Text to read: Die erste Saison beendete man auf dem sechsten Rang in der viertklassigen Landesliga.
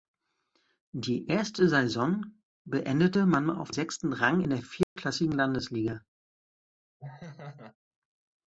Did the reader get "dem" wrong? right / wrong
wrong